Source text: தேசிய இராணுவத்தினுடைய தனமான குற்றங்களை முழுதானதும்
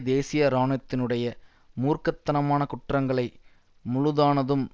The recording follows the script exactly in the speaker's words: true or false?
false